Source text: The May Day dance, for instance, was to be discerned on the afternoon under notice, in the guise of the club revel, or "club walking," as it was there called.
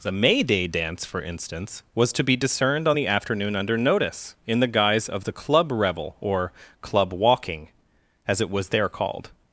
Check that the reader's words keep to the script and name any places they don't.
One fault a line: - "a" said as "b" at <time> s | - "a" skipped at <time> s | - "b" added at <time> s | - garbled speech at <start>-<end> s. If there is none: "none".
none